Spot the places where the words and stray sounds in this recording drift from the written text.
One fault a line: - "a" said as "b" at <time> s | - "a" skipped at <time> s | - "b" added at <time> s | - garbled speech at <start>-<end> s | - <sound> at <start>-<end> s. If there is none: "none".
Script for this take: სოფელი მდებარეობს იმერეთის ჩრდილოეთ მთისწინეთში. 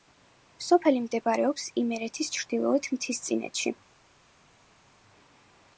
none